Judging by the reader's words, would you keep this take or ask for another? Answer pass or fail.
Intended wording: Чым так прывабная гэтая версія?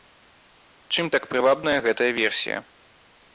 pass